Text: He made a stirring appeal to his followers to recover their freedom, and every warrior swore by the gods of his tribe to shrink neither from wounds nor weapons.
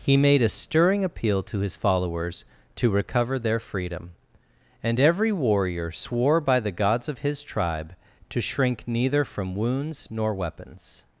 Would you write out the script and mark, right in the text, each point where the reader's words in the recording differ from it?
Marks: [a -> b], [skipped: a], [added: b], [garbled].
He made a stirring appeal to his followers to recover their freedom, and every warrior swore by the gods of his tribe to shrink neither from wounds nor weapons.